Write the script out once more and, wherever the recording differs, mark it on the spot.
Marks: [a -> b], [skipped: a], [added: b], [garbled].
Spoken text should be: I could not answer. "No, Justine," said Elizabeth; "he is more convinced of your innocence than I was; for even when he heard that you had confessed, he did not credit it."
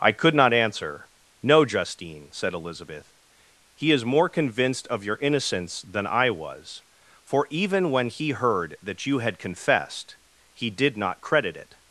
I could not answer. "No, Justine," said Elizabeth; "he is more convinced of your innocence than I was; for even when he heard that you had confessed, he did not credit it."